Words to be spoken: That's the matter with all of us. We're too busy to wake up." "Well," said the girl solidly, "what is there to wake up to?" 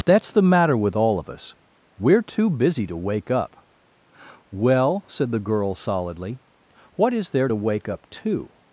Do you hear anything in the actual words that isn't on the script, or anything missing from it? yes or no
no